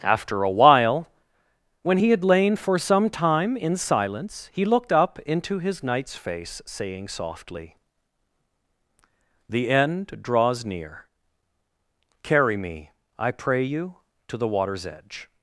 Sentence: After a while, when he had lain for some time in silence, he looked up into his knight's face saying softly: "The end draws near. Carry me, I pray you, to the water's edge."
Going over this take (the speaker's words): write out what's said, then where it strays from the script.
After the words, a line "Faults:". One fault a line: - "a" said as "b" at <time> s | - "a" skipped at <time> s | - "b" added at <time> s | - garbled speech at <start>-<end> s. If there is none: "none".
After a while, when he had lain for some time in silence, he looked up into his knight's face saying softly: "The end draws near. Carry me, I pray you, to the water's edge."
Faults:
none